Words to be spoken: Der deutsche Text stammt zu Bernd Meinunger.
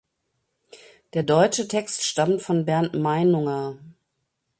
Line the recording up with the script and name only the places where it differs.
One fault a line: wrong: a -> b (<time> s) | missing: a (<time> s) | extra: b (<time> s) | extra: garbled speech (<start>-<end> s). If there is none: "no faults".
wrong: zu -> von (2.4 s)